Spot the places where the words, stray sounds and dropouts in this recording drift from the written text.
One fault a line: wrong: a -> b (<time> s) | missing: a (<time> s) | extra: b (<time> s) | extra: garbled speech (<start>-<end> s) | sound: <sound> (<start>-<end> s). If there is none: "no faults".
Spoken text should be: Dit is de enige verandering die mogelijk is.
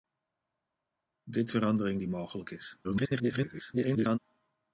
missing: is de enige (1.5 s)
extra: garbled speech (2.8-4.2 s)